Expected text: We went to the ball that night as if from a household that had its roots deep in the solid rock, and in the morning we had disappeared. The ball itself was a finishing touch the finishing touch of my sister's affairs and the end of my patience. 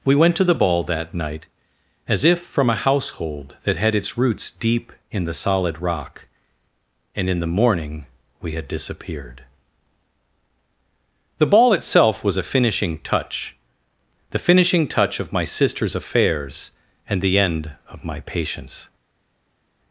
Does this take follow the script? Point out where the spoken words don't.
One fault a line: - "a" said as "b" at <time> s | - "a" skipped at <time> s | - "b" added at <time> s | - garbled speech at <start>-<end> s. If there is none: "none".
none